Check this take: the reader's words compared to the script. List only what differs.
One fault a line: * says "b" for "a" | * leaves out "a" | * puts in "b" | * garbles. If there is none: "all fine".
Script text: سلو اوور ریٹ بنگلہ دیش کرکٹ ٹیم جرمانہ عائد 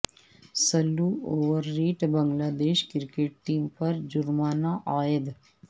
* puts in "پر"